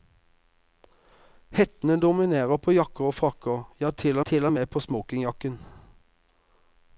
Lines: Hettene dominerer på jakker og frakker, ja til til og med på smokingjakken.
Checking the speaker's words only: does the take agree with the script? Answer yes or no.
yes